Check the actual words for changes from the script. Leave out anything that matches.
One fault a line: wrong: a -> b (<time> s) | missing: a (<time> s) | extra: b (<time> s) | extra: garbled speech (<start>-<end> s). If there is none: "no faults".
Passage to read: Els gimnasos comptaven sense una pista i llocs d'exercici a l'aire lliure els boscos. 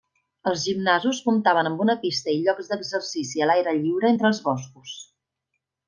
wrong: sense -> amb (1.7 s)
extra: entre (4.1 s)